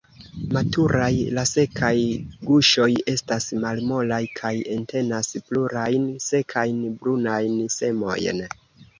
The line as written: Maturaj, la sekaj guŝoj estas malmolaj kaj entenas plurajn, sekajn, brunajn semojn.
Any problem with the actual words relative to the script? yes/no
no